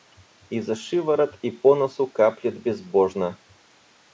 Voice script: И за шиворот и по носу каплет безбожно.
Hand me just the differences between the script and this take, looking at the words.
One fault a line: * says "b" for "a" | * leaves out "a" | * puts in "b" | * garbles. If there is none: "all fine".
all fine